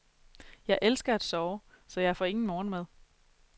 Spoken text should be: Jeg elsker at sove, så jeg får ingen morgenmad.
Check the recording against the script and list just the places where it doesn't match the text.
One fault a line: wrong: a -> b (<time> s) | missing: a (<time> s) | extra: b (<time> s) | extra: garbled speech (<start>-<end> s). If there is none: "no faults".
no faults